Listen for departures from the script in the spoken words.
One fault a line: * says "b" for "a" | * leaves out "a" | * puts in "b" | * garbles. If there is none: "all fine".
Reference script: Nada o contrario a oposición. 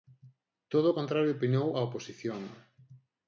* says "Todo" for "Nada"
* puts in "opinou"